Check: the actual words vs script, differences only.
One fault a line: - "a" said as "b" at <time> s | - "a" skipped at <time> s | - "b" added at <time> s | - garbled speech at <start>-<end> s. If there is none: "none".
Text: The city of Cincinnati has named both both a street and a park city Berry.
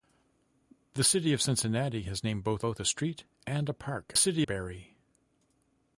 none